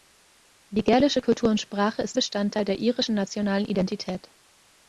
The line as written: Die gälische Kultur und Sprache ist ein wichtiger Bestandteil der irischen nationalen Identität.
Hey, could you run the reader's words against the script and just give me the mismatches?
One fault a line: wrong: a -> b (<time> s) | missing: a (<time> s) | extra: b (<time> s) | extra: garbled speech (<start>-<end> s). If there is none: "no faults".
missing: ein wichtiger (2.2 s)